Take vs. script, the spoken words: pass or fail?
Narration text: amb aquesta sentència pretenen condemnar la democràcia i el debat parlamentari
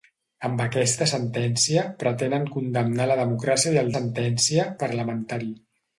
fail